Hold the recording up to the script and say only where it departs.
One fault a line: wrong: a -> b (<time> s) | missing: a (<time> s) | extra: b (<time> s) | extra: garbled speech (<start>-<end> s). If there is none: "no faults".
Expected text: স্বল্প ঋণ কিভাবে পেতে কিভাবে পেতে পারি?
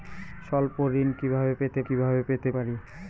no faults